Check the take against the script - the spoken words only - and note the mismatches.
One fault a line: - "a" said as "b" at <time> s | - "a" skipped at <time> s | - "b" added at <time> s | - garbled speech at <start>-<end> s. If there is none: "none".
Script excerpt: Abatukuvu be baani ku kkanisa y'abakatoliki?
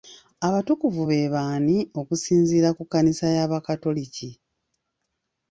- "okusinziira" added at 2.0 s